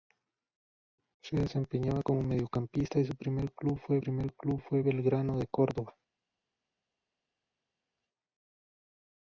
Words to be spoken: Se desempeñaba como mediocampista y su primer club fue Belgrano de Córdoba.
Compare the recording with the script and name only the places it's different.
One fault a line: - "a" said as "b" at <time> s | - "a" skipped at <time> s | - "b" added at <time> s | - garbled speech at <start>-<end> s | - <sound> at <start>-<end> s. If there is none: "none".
- "primer club fue" added at 4.0 s